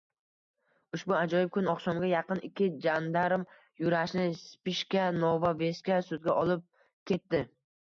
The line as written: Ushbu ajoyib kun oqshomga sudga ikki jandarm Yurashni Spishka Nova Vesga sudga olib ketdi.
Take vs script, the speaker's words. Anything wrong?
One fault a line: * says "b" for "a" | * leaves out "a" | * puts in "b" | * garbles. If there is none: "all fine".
* says "yaqin" for "sudga"